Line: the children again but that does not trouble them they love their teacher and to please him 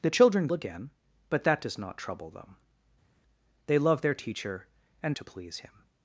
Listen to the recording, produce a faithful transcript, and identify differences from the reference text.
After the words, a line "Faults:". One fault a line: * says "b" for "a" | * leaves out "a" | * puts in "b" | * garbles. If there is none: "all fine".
the children again but that does not trouble them they love their teacher and to please him
Faults:
all fine